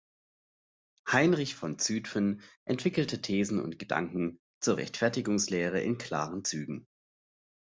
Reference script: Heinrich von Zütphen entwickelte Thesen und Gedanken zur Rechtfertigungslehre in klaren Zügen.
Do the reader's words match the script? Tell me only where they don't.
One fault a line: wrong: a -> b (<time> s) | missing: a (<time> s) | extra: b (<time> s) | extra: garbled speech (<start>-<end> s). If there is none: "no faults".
no faults